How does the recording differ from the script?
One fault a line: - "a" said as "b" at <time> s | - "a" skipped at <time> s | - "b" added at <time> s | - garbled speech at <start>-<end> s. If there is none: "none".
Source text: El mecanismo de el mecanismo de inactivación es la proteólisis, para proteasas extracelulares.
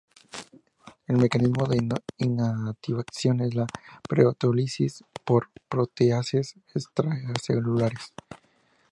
- "el mecanismo de" skipped at 1.8 s
- "para" said as "por" at 5.2 s